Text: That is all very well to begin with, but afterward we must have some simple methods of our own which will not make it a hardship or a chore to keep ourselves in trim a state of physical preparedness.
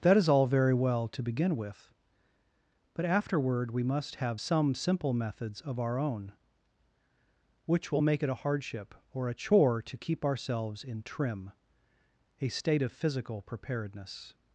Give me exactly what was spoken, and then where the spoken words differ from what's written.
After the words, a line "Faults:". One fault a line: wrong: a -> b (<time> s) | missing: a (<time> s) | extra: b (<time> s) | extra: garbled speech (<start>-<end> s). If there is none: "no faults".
That is all very well to begin with, but afterward we must have some simple methods of our own which will make it a hardship or a chore to keep ourselves in trim a state of physical preparedness.
Faults:
missing: not (8.0 s)